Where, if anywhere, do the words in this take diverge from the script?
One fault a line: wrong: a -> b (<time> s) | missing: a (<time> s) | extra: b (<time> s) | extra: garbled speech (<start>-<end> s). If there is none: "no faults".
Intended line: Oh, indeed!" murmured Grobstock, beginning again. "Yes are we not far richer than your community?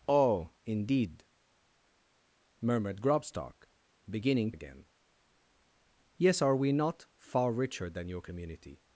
no faults